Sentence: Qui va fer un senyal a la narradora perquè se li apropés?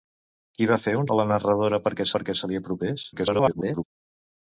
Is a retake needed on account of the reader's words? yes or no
yes